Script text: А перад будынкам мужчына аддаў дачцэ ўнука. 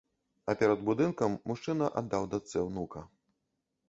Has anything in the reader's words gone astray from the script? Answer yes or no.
no